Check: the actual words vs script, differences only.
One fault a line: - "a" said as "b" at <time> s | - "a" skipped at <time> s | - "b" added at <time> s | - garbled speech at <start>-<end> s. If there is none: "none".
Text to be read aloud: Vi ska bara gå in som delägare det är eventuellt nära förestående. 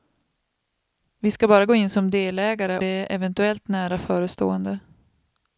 none